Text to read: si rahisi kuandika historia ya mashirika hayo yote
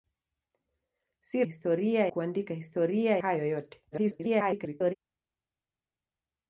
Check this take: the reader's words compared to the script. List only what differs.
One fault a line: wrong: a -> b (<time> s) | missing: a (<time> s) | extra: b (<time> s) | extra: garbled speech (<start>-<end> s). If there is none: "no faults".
wrong: rahisi -> historia (1.4 s)
missing: ya mashirika (3.2 s)
extra: garbled speech (3.9-5.0 s)